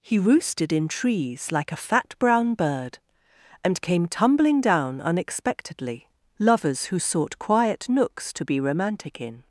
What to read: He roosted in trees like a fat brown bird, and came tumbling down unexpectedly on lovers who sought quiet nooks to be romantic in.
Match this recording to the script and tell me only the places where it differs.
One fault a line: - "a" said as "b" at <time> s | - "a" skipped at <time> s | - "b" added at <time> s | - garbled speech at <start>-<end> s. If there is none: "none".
- "on" skipped at 6.1 s